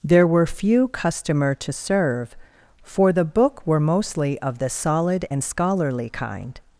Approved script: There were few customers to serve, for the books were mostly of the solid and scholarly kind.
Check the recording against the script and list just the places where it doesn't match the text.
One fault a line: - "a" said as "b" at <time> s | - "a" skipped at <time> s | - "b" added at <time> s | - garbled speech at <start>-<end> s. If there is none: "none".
- "customers" said as "customer" at 0.9 s
- "books" said as "book" at 3.2 s